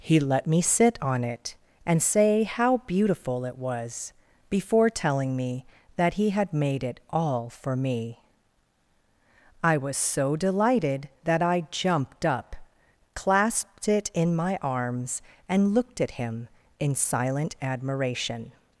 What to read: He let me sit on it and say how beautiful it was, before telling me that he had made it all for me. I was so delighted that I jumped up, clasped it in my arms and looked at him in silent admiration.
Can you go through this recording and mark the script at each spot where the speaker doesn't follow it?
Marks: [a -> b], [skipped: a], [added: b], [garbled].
He let me sit on it and say how beautiful it was, before telling me that he had made it all for me. I was so delighted that I jumped up, clasped it in my arms and looked at him in silent admiration.